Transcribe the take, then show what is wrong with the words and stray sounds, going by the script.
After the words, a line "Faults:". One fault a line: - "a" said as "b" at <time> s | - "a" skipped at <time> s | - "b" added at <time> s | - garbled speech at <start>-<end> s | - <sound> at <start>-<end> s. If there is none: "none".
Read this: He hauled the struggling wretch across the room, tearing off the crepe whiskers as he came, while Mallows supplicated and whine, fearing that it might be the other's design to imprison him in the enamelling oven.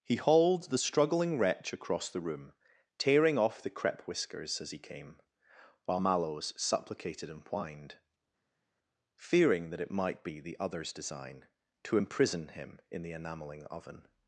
He hauled the struggling wretch across the room, tearing off the crepe whiskers as he came, while Mallows supplicated and whined, fearing that it might be the other's design to imprison him in the enamelling oven.
Faults:
- "whine" said as "whined" at 7.5 s